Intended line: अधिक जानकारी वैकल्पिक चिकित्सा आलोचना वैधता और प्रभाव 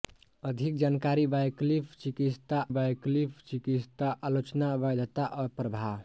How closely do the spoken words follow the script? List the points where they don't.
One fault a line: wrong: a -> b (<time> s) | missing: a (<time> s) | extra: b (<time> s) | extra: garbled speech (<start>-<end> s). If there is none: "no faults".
extra: वैकल्पिक चिकित्सा (2.7 s)